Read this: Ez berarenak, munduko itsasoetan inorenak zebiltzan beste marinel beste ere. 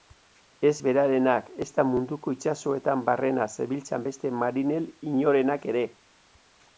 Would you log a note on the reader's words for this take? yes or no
yes